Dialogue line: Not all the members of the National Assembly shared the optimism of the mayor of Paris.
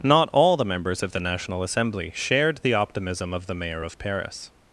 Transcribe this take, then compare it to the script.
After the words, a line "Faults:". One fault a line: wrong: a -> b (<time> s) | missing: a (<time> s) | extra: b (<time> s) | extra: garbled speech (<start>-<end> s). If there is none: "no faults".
Not all the members of the National Assembly shared the optimism of the mayor of Paris.
Faults:
no faults